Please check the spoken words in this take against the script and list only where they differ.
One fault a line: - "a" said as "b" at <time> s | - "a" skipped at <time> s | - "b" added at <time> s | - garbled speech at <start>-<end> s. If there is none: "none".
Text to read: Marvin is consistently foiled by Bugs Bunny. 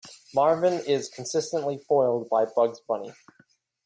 none